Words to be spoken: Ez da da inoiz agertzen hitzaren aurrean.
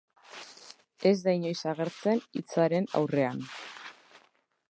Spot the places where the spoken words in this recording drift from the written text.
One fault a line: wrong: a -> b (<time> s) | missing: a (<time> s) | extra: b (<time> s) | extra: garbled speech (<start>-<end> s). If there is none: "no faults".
missing: da (1.4 s)